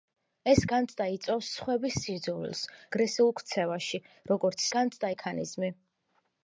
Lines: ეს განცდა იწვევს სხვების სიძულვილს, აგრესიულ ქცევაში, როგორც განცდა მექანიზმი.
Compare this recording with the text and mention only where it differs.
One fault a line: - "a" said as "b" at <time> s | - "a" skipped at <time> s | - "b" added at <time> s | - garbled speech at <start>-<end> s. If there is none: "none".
none